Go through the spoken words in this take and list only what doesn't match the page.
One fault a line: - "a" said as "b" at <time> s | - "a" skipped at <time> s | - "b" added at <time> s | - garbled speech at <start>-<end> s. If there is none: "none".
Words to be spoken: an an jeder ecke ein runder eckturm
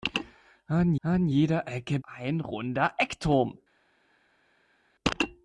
none